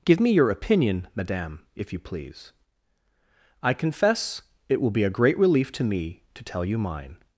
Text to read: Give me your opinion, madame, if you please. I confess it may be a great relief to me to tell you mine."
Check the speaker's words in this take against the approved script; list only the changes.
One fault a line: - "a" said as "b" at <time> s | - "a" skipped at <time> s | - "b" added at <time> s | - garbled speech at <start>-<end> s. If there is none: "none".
- "may" said as "will" at 4.8 s